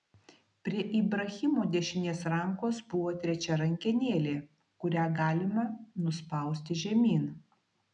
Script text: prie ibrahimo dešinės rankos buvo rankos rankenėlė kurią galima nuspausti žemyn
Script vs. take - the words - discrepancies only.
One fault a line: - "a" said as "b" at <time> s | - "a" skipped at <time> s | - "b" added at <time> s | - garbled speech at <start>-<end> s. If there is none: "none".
- "rankos" said as "trečia" at 3.3 s